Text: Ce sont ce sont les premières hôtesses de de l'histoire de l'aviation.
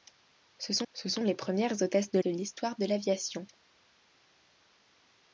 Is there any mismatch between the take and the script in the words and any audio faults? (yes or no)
no